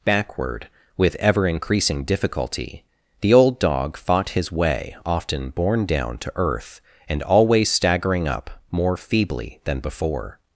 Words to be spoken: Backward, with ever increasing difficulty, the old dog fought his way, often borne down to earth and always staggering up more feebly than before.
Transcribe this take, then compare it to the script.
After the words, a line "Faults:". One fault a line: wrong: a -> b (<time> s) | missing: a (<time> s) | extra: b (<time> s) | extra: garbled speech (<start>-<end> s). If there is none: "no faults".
Backward, with ever increasing difficulty, the old dog fought his way, often borne down to earth and always staggering up more feebly than before.
Faults:
no faults